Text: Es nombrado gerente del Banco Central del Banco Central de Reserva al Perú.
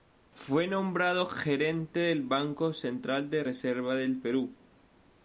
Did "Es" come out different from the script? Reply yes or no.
yes